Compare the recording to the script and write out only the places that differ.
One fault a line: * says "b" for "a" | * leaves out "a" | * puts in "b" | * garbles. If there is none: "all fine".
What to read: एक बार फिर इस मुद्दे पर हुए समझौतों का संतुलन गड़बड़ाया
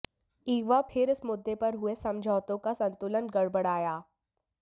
all fine